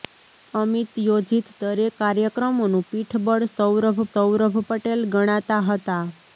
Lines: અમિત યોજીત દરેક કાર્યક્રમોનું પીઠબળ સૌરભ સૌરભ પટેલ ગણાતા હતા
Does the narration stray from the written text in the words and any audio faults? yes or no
no